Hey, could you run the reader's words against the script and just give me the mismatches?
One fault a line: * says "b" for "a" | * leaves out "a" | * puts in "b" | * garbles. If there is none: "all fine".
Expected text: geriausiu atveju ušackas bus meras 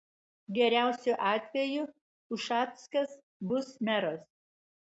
all fine